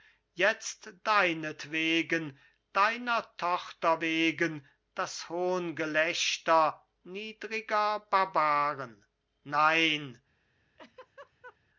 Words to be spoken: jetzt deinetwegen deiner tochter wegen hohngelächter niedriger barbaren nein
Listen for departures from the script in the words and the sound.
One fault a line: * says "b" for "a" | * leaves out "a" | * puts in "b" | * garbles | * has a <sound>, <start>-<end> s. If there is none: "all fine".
* puts in "das"
* has a laugh, 10.8-11.6 s